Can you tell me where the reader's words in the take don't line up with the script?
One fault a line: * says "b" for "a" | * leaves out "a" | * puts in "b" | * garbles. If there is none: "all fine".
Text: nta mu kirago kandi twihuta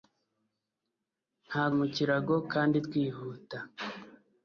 all fine